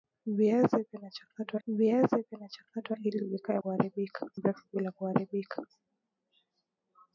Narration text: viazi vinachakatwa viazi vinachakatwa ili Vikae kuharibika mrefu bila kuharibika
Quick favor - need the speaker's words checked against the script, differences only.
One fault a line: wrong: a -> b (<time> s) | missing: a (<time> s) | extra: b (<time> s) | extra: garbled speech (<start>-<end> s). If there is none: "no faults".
no faults